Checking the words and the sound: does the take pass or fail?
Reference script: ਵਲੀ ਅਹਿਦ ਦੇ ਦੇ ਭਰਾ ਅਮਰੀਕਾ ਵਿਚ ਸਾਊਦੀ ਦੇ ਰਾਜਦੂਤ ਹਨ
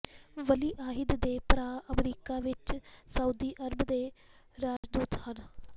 fail